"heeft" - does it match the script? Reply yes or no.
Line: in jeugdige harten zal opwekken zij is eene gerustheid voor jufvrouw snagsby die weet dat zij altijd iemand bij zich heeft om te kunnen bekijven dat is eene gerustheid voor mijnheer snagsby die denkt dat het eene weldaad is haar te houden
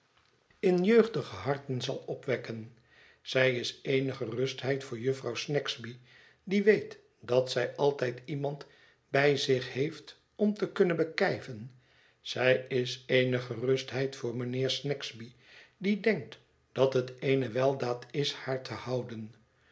yes